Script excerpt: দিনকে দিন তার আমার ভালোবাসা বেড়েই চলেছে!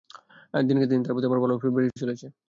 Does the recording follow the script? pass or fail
fail